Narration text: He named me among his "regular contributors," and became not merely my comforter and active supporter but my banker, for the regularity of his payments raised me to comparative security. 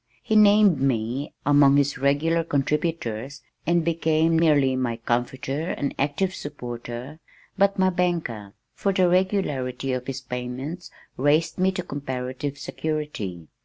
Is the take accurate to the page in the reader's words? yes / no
no